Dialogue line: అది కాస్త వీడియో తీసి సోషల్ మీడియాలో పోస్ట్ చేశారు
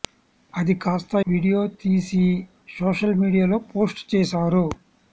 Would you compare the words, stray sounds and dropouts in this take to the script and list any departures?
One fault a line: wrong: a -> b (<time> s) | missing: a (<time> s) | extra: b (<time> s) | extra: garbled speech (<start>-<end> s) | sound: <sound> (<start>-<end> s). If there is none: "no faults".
no faults